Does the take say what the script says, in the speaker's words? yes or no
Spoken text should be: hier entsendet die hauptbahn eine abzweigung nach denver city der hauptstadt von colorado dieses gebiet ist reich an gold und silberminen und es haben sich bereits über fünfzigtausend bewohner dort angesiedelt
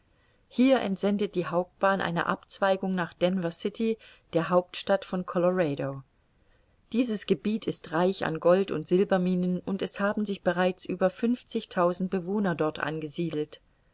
yes